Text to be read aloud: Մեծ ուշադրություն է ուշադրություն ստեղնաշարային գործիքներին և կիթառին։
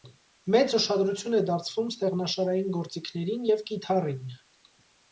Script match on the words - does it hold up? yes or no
no